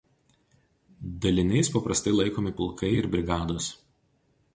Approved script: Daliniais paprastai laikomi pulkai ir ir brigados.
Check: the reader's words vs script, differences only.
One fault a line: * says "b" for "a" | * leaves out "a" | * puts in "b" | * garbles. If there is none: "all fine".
* leaves out "ir"